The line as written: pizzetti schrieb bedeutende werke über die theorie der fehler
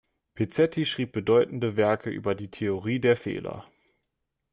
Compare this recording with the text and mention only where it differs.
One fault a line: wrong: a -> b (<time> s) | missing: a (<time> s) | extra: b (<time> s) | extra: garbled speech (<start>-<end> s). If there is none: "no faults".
no faults